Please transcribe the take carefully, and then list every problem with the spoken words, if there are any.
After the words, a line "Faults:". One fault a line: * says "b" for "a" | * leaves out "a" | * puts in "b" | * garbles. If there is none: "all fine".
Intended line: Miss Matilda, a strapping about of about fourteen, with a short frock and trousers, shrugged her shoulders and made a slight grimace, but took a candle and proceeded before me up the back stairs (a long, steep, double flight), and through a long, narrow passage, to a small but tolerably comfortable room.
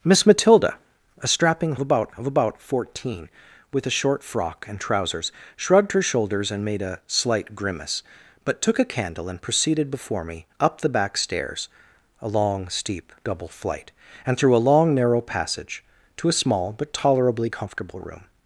Miss Matilda, a strapping about of about fourteen, with a short frock and trousers, shrugged her shoulders and made a slight grimace, but took a candle and proceeded before me up the back stairs (a long, steep, double flight), and through a long, narrow passage, to a small but tolerably comfortable room.
Faults:
all fine